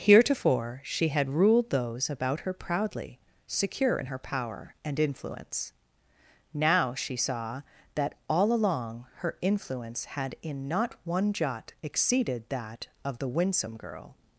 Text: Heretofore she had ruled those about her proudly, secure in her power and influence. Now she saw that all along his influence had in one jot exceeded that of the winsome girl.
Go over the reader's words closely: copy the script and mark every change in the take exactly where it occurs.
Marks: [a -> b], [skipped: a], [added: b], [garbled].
Heretofore she had ruled those about her proudly, secure in her power and influence. Now she saw that all along [his -> her] influence had in [added: not] one jot exceeded that of the winsome girl.